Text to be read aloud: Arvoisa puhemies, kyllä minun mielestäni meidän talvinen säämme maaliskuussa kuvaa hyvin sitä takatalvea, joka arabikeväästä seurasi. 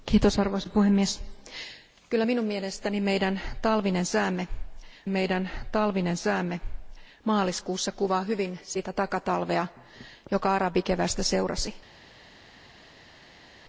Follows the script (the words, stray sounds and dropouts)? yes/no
no